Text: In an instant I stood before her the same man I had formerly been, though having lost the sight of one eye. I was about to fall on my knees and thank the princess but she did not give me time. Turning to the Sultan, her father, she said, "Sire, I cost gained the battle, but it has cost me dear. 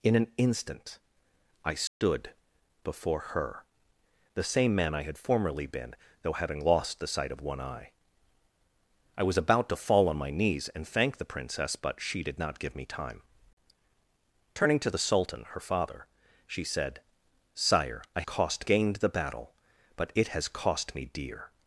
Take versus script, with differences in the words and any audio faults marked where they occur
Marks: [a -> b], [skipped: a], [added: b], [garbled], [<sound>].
In an instant I stood [dropout] before her the same man I had formerly been, though having lost the sight of one eye. I was about to fall on my knees and thank the princess but she did not give me time. Turning to the Sultan, her father, she said, "Sire, I cost gained the battle, but it has cost me dear.